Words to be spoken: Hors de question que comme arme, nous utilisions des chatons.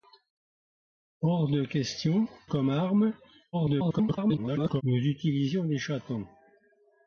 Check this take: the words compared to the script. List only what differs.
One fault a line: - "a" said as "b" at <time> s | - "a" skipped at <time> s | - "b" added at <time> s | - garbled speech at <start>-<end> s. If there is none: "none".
- "que" skipped at 2.3 s
- garbled speech at 3.5-4.8 s